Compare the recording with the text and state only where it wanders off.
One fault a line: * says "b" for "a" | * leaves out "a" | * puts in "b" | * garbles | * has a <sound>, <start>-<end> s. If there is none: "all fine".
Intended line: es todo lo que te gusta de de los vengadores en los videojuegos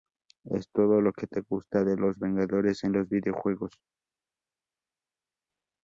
* leaves out "de"